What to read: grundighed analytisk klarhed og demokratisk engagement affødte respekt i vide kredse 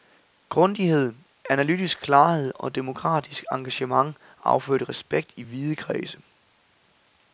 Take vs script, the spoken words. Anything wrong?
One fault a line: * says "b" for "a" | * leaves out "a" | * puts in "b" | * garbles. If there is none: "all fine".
all fine